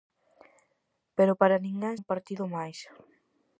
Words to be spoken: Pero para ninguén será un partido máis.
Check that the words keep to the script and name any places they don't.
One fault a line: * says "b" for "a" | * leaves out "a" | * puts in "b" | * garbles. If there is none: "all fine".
* leaves out "será"